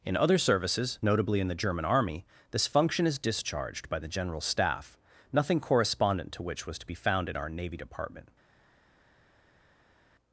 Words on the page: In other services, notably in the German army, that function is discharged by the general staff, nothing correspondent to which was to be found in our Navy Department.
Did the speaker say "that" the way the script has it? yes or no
no